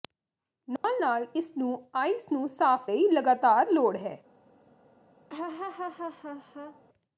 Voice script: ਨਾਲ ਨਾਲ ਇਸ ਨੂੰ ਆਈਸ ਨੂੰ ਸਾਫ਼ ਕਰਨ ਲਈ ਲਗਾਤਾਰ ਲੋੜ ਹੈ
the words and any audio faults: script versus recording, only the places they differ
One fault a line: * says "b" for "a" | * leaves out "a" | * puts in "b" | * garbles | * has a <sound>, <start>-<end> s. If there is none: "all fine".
* has a dropout, 0.8-0.8 s
* leaves out "ਕਰਨ"
* has a laugh, 5.3-6.8 s